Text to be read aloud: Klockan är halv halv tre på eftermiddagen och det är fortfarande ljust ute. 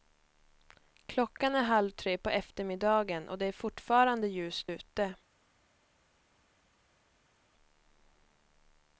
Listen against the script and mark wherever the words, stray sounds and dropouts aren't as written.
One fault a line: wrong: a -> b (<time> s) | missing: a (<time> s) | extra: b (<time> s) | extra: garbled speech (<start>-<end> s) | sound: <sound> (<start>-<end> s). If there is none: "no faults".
missing: halv (1.9 s)